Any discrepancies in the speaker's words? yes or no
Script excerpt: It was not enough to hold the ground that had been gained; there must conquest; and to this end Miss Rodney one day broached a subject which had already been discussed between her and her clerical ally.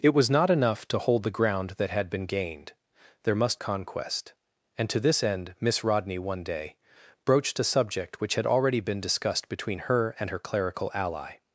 no